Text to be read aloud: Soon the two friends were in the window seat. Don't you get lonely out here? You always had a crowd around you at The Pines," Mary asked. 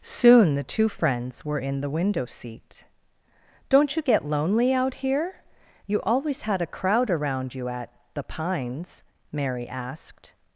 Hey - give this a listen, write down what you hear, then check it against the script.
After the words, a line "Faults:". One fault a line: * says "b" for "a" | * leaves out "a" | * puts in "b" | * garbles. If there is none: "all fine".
Soon the two friends were in the window seat. Don't you get lonely out here? You always had a crowd around you at The Pines," Mary asked.
Faults:
all fine